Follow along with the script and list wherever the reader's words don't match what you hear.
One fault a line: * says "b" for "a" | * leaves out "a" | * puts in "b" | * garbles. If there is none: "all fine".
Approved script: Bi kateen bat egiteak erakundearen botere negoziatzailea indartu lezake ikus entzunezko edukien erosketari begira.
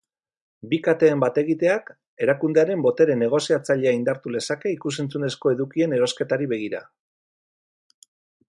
all fine